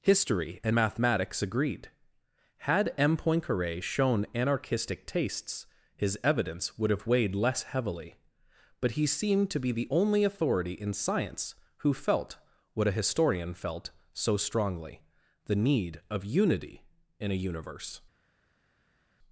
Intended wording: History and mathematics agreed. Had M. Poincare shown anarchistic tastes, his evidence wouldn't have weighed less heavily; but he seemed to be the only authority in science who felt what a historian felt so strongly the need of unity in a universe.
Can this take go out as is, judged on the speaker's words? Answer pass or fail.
fail